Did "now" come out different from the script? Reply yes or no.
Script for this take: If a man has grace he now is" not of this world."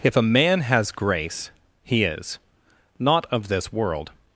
yes